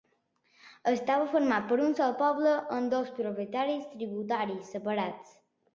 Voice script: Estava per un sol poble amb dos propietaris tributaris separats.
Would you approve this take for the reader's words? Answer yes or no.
no